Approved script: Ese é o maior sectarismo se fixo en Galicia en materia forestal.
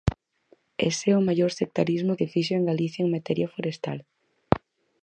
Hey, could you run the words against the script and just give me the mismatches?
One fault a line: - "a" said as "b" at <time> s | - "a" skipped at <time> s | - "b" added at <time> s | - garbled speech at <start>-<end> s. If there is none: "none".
none